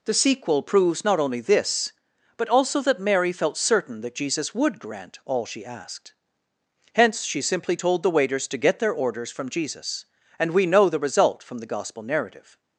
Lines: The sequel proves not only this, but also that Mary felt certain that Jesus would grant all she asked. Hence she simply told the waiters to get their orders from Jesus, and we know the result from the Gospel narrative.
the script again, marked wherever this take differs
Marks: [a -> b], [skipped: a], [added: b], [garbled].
The sequel proves not only this, but also that Mary felt certain that Jesus would grant all she asked. Hence she simply told the waiters to get their orders from Jesus, and we know the result from the Gospel narrative.